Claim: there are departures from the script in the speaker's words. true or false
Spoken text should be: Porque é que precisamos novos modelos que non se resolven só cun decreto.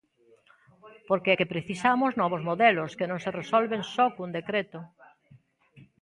false